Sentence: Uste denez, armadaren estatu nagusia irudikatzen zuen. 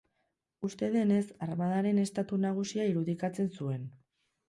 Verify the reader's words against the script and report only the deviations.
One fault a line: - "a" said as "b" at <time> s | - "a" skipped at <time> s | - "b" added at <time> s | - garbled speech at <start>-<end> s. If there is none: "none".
none